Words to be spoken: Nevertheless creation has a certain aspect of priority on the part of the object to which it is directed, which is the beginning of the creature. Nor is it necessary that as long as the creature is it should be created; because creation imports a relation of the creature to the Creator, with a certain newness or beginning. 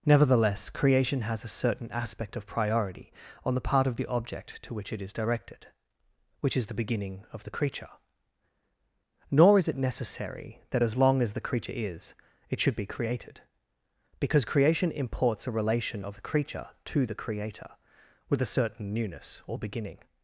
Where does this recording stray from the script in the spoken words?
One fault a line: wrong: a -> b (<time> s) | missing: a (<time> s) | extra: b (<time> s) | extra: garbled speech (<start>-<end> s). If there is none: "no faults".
no faults